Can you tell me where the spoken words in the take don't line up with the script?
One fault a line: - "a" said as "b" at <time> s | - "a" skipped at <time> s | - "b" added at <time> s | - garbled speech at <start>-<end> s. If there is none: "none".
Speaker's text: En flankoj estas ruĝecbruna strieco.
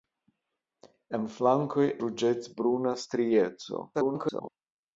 - "estas" skipped at 1.9 s
- garbled speech at 3.9-4.5 s